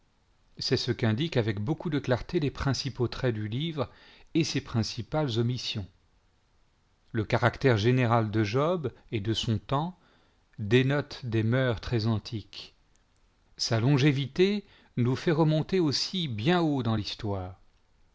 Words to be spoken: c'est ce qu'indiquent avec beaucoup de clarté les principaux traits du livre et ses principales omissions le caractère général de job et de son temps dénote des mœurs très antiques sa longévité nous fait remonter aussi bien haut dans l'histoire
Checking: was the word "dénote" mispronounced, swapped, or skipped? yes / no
no